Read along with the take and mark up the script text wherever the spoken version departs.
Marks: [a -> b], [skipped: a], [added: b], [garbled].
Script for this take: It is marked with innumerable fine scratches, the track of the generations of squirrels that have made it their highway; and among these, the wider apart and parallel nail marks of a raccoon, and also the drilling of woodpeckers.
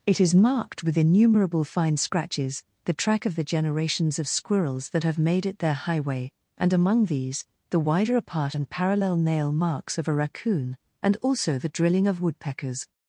It is marked with innumerable fine scratches, the track of the generations of squirrels that have made it their highway; and among these, the wider apart and parallel nail marks of a raccoon, and also the drilling of woodpeckers.